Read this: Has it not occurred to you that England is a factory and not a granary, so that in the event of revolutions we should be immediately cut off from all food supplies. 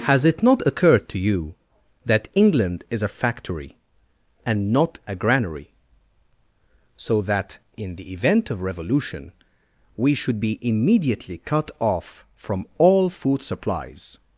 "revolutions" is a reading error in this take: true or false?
true